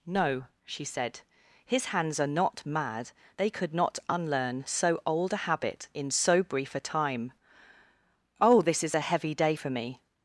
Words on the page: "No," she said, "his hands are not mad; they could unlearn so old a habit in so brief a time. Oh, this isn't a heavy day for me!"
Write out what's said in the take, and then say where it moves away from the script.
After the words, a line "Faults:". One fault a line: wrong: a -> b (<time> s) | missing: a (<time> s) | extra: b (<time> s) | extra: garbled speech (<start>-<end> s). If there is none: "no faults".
"No," she said, "his hands are not mad; they could not unlearn so old a habit in so brief a time. Oh, this is a heavy day for me!"
Faults:
extra: not (3.7 s)
wrong: isn't -> is (8.8 s)